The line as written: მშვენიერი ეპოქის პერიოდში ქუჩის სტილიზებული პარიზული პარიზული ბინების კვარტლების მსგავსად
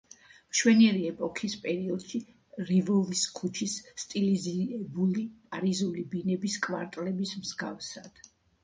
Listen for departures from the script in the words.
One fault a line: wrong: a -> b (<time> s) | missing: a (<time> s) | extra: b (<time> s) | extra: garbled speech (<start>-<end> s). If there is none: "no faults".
extra: რივოლის (2.7 s)
missing: პარიზული (6.1 s)